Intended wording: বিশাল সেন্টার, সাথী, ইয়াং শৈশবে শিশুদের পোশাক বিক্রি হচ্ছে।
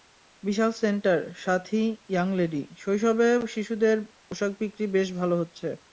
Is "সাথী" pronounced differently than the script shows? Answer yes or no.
no